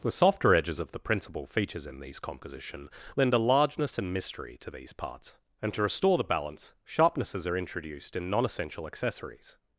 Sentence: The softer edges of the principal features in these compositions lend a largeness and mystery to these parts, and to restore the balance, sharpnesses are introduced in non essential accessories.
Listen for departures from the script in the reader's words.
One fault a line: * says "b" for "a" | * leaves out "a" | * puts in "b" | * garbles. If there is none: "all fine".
* says "composition" for "compositions"